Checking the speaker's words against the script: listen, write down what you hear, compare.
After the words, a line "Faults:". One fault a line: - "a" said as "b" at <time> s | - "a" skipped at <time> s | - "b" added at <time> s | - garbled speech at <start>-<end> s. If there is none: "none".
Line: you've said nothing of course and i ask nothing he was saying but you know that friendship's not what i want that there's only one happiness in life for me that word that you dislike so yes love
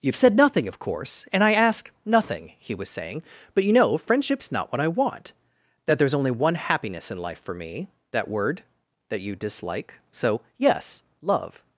you've said nothing of course and i ask nothing he was saying but you know friendship's not what i want that there's only one happiness in life for me that word that you dislike so yes love
Faults:
- "that" skipped at 4.0 s